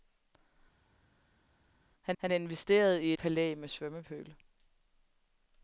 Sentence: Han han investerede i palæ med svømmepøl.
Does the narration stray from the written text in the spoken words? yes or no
no